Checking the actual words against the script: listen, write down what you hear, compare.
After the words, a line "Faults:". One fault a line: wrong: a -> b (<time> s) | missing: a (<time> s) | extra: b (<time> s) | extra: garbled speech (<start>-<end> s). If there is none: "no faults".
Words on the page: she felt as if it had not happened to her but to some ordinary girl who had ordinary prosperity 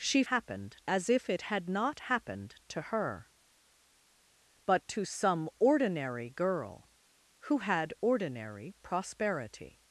she happened as if it had not happened to her but to some ordinary girl who had ordinary prosperity
Faults:
wrong: felt -> happened (0.3 s)